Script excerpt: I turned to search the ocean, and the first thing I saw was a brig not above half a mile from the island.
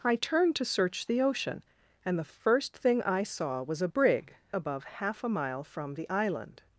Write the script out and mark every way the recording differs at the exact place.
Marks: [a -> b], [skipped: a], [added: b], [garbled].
I turned to search the ocean, and the first thing I saw was a brig [skipped: not] above half a mile from the island.